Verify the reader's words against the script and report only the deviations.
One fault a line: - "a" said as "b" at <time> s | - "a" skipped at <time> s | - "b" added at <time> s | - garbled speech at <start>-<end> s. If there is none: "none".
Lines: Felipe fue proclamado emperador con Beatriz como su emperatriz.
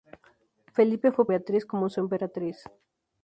- "proclamado emperador con" skipped at 1.3 s